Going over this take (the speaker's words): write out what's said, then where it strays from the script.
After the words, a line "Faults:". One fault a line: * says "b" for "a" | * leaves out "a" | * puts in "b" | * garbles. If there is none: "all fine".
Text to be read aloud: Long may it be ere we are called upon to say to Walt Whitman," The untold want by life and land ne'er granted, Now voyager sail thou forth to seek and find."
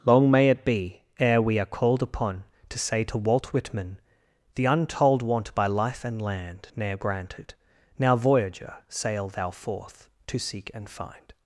Long may it be ere we are called upon to say to Walt Whitman," The untold want by life and land ne'er granted, Now voyager sail thou forth to seek and find."
Faults:
all fine